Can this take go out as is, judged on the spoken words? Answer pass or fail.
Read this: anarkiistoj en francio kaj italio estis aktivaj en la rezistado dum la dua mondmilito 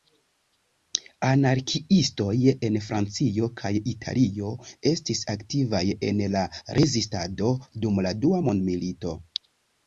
pass